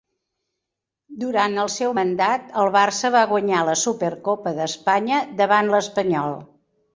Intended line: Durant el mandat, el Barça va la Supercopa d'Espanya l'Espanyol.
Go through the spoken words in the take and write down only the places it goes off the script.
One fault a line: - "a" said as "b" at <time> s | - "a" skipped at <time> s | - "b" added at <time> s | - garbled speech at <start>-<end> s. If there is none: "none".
- "seu" added at 1.7 s
- "guanyar" added at 3.3 s
- "davant" added at 5.4 s